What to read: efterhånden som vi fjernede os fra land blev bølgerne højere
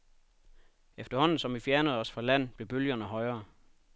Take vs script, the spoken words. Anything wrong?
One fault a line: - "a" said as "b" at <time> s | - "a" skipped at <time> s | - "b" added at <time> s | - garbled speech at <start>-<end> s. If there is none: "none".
none